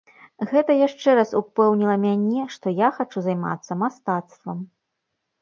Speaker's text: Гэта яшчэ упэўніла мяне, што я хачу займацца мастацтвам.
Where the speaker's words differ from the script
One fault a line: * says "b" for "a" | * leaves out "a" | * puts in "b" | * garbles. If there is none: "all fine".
* puts in "раз"